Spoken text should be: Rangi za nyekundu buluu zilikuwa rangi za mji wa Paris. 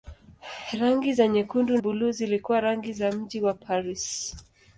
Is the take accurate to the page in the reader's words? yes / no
yes